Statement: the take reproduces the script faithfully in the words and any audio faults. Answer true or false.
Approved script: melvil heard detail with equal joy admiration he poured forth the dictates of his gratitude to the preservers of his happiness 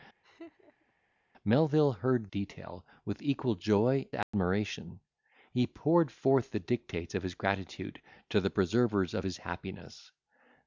false